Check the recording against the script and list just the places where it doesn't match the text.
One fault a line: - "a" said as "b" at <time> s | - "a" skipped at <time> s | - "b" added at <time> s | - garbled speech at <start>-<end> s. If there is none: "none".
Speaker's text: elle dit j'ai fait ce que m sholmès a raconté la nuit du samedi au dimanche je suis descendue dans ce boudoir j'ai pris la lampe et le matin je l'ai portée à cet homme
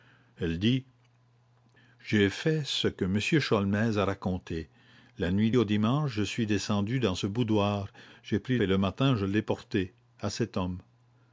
- "du samedi" skipped at 5.5 s
- "la lampe" skipped at 8.6 s